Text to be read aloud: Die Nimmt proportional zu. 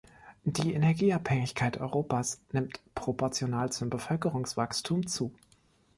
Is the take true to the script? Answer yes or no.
no